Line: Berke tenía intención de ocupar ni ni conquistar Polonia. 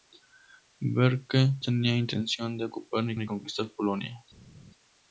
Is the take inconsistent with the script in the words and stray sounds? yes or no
no